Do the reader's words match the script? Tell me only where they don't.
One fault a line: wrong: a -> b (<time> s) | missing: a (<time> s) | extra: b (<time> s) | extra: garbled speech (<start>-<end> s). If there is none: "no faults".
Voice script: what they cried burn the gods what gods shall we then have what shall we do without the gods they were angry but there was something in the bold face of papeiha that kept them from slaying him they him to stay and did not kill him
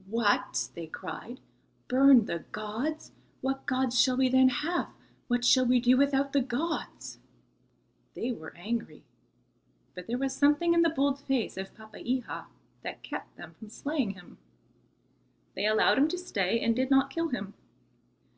extra: allowed (15.7 s)